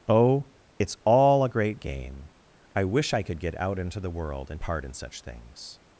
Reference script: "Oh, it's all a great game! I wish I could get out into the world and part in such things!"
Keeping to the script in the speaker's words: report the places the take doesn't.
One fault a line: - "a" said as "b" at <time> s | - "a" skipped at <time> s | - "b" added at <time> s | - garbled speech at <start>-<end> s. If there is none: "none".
none